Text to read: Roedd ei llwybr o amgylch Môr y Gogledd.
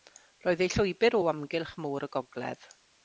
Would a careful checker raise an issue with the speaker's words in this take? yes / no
no